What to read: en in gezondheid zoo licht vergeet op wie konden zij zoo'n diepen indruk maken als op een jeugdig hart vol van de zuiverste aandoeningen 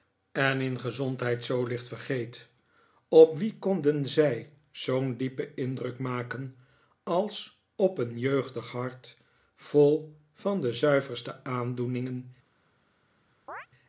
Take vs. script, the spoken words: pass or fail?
pass